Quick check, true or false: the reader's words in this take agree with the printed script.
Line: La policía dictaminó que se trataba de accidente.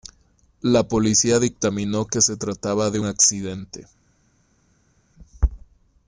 true